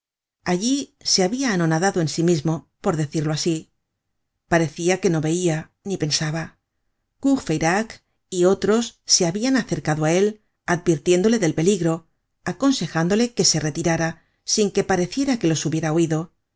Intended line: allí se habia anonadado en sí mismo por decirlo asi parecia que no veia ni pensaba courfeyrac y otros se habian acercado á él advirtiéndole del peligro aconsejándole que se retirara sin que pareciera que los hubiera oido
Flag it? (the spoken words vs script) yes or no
no